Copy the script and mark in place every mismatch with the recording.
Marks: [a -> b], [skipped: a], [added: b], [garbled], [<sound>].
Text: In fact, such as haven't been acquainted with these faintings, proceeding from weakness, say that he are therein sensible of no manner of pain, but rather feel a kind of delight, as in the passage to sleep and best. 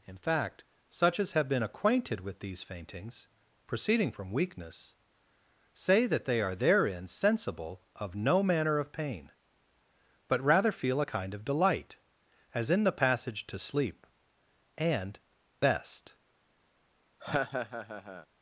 In fact, such as [haven't -> have] been acquainted with these faintings, proceeding from weakness, say that [he -> they] are therein sensible of no manner of pain, but rather feel a kind of delight, as in the passage to sleep and best. [laugh]